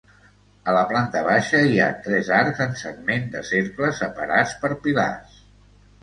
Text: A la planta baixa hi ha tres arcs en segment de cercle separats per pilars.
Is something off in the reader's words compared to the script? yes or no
no